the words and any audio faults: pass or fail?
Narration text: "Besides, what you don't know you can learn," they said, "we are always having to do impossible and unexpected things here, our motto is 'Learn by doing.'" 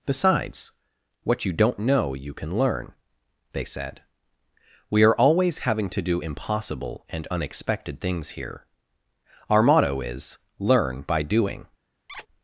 fail